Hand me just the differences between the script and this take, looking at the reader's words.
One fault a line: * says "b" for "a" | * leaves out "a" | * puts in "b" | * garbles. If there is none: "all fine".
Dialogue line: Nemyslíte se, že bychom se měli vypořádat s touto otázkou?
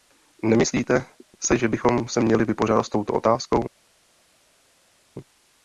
all fine